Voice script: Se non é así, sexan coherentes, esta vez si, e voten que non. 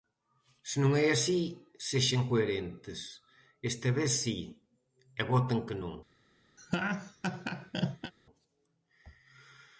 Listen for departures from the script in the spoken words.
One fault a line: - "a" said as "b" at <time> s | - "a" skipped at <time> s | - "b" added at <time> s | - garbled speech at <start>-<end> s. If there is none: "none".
none